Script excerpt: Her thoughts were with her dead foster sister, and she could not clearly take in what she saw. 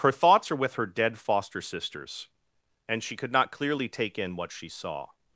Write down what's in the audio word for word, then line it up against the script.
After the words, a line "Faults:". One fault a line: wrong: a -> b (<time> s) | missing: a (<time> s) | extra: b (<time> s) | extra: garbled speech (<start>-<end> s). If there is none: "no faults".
Her thoughts are with her dead foster sisters, and she could not clearly take in what she saw.
Faults:
wrong: were -> are (0.5 s)
wrong: sister -> sisters (1.6 s)